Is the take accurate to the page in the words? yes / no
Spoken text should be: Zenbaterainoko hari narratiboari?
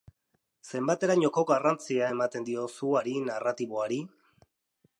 no